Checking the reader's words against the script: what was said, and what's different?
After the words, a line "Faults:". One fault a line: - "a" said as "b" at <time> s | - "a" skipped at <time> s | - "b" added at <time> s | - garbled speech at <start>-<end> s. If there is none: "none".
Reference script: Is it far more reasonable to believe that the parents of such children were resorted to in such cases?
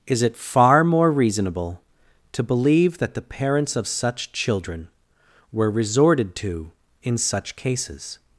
Is it far more reasonable to believe that the parents of such children were resorted to in such cases?
Faults:
none